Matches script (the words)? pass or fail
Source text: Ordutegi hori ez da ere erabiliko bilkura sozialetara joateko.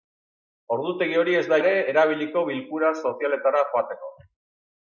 pass